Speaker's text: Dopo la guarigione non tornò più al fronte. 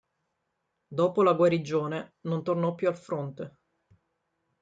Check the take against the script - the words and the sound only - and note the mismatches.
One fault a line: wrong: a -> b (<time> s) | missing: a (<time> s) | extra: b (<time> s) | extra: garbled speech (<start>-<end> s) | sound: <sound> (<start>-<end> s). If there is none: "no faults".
no faults